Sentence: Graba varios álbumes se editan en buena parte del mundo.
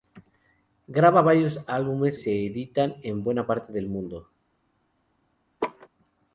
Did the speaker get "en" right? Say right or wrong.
right